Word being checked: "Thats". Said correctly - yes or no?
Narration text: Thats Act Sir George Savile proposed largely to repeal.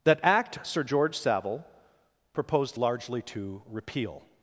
no